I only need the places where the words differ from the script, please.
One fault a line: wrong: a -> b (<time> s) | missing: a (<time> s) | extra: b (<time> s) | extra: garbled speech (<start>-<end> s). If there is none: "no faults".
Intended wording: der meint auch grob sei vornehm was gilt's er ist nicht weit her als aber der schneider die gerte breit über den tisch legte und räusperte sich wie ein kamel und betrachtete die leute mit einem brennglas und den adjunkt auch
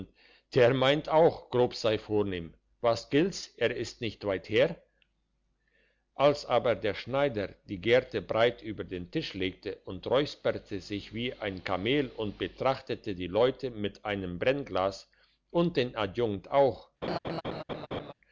no faults